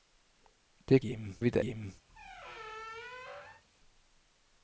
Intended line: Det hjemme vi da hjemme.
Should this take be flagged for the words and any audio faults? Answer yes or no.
yes